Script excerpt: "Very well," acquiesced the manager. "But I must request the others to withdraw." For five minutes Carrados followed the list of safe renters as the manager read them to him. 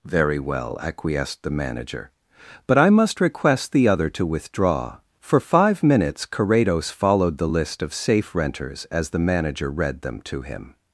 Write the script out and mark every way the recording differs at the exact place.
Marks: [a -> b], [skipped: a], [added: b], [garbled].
"Very well," acquiesced the manager. "But I must request the [others -> other] to withdraw." For five minutes Carrados followed the list of safe renters as the manager read them to him.